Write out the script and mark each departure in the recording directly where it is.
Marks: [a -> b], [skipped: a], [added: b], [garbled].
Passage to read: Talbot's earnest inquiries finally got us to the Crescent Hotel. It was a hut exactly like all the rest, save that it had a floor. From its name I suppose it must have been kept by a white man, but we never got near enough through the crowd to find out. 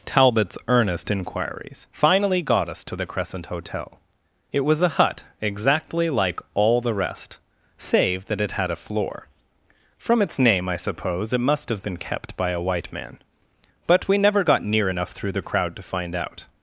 Talbot's earnest inquiries finally got us to the Crescent Hotel. It was a hut exactly like all the rest, save that it had a floor. From its name I suppose it must have been kept by a white man, but we never got near enough through the crowd to find out.